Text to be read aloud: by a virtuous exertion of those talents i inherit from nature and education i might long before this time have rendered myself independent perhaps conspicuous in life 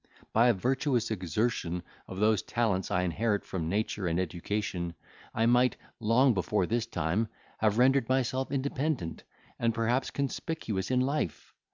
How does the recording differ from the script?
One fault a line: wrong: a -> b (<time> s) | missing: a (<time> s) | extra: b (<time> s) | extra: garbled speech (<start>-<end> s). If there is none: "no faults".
extra: and (9.6 s)